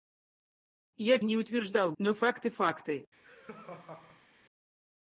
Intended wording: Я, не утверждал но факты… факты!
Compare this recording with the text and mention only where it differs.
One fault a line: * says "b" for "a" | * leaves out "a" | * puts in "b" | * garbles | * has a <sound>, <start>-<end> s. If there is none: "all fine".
* has a laugh, 3.2-4.3 s